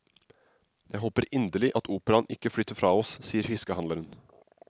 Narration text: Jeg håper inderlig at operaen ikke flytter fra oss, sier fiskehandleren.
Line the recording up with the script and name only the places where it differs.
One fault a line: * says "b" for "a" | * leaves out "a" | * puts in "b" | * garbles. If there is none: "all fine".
all fine